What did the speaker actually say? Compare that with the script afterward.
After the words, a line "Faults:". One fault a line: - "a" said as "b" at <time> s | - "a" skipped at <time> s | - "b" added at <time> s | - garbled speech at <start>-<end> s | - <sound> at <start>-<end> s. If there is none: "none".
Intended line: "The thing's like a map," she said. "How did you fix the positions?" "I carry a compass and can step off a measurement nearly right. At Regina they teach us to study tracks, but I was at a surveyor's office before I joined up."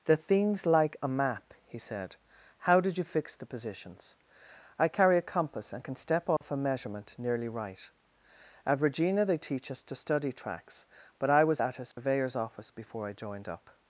"The thing's like a map," he said. "How did you fix the positions?" "I carry a compass and can step off a measurement nearly right. At Regina they teach us to study tracks, but I was at a surveyor's office before I joined up."
Faults:
- "she" said as "he" at 1.6 s
- dropout at 6.4-6.4 s
- dropout at 11.9-12.0 s